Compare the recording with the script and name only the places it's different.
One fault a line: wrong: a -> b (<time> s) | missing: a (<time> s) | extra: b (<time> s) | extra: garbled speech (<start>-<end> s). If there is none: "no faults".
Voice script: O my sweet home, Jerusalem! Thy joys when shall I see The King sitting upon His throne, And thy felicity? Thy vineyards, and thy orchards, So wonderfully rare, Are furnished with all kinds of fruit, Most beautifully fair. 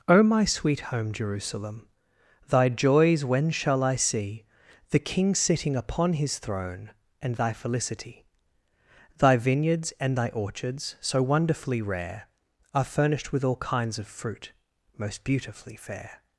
no faults